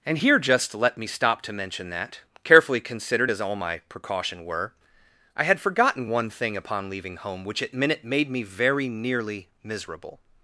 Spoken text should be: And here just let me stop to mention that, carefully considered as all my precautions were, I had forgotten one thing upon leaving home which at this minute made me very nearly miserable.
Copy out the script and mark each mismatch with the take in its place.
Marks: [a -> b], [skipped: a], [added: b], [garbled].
And here just let me stop to mention that, carefully considered as all my [precautions -> precaution] were, I had forgotten one thing upon leaving home which at [skipped: this] minute made me very nearly miserable.